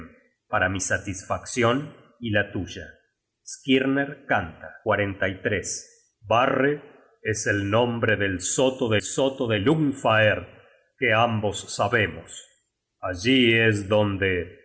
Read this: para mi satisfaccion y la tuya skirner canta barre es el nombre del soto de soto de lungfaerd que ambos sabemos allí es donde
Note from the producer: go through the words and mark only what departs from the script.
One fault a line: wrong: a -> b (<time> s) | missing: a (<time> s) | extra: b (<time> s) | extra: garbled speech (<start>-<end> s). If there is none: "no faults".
no faults